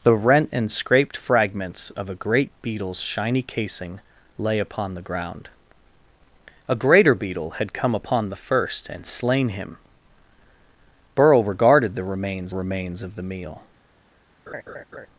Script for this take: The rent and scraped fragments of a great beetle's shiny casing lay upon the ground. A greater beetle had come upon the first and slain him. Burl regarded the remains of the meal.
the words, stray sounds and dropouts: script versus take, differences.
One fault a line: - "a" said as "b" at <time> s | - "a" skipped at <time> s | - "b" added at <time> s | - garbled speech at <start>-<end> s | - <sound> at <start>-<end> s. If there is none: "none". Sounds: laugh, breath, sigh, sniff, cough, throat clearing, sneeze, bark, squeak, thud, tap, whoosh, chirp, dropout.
- "remains" added at 12.5 s
- laugh at 14.5-15.1 s